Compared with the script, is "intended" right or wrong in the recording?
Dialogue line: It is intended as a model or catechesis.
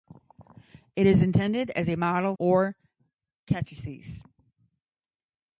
right